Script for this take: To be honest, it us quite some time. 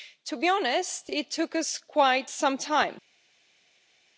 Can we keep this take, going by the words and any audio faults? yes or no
no